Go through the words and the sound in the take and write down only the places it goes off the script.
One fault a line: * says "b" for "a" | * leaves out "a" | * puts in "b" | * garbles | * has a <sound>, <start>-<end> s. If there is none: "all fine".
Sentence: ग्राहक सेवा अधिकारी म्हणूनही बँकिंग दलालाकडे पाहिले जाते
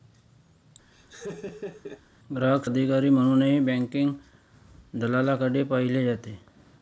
* has a laugh, 0.9-2.0 s
* leaves out "सेवा"